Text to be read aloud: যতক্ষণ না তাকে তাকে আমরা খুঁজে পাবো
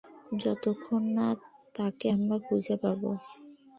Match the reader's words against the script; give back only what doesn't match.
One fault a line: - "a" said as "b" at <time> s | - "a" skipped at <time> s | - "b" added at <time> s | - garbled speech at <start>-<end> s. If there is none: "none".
- "তাকে" skipped at 2.1 s